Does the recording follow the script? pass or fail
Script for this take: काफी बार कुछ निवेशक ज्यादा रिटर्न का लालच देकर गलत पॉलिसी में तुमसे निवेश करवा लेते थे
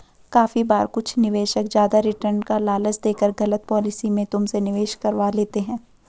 fail